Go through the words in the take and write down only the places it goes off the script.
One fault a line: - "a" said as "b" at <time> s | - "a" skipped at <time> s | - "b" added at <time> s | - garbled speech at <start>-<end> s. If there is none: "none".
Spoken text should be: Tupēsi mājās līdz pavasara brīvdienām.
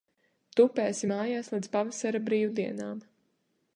none